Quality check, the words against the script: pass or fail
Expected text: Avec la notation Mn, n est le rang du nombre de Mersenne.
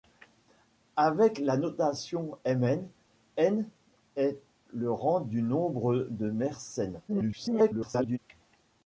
fail